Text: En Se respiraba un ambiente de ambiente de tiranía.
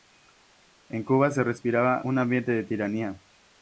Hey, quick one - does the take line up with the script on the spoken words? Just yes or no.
no